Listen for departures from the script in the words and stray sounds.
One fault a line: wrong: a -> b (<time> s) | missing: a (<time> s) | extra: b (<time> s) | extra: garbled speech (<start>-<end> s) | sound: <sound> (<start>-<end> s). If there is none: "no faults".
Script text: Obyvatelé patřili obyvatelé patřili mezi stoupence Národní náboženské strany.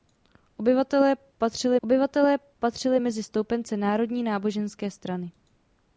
no faults